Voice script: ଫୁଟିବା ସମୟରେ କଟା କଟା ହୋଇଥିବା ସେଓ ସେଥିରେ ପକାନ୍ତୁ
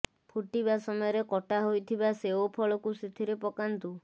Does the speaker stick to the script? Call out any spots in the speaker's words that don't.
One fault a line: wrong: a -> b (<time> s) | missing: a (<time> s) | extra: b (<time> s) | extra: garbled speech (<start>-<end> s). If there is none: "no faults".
missing: କଟା (1.6 s)
extra: ଫଳକୁ (2.6 s)